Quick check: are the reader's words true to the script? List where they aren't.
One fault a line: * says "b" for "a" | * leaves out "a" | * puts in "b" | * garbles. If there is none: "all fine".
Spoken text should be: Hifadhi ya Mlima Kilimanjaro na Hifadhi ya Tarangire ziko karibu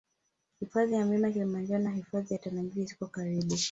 all fine